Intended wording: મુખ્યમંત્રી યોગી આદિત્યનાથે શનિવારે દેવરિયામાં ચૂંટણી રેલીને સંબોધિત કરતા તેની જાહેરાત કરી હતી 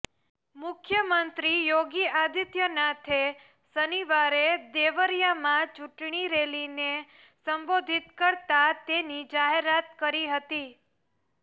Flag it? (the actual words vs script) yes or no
no